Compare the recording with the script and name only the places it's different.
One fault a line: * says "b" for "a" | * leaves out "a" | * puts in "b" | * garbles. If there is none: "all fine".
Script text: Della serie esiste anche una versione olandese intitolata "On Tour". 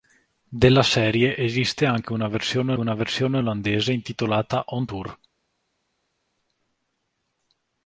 * puts in "una versione"